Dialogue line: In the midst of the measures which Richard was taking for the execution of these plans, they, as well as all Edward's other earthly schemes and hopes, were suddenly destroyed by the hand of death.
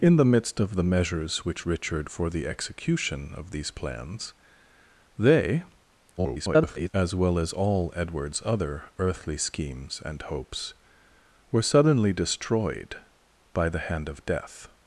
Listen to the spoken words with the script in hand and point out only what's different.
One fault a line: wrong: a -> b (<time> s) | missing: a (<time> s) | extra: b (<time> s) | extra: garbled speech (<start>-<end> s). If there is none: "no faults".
missing: was taking (2.1 s)
extra: garbled speech (6.2-6.9 s)